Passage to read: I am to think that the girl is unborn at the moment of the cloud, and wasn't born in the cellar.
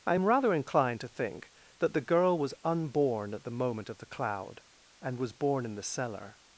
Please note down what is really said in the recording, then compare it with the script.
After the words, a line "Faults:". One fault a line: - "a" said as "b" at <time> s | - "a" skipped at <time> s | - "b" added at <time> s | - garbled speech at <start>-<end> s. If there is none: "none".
I am rather inclined to think that the girl was unborn at the moment of the cloud, and was born in the cellar.
Faults:
- "rather inclined" added at 0.2 s
- "is" said as "was" at 2.4 s
- "wasn't" said as "was" at 5.2 s